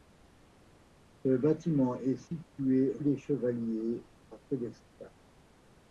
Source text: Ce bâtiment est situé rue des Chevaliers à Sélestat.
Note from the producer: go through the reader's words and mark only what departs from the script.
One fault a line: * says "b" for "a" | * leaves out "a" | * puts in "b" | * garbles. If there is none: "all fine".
* leaves out "rue"